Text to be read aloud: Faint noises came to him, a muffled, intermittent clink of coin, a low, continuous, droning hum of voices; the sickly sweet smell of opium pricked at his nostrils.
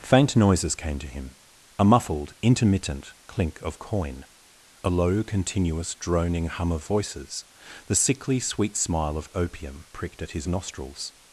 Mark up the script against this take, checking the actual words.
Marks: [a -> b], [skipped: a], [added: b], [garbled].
Faint noises came to him, a muffled, intermittent clink of coin, a low, continuous, droning hum of voices; the sickly sweet [smell -> smile] of opium pricked at his nostrils.